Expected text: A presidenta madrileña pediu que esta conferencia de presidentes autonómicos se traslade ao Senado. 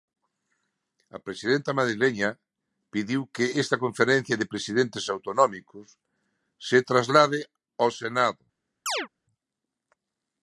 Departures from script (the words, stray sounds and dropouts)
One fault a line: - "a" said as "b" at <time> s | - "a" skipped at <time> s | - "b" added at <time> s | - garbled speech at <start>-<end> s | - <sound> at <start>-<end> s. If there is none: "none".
- chirp at 8.9-9.1 s